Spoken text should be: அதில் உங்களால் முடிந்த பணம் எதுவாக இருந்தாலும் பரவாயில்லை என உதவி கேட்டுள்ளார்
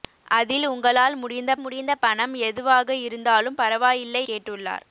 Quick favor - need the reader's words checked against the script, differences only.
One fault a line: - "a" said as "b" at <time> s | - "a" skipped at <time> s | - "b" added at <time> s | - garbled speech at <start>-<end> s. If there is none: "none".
- "முடிந்த" added at 1.6 s
- "என உதவி" skipped at 4.2 s